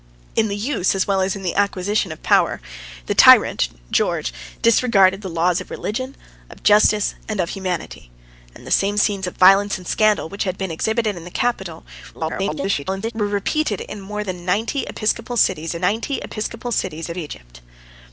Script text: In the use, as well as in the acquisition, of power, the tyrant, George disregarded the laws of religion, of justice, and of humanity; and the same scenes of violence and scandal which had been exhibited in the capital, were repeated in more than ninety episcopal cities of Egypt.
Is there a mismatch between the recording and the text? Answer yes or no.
yes